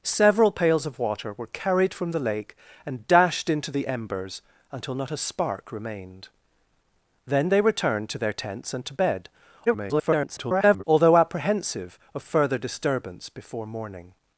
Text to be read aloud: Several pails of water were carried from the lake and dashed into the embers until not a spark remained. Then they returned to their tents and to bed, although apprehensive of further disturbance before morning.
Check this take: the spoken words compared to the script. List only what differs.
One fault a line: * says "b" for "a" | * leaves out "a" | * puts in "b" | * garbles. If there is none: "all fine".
* garbles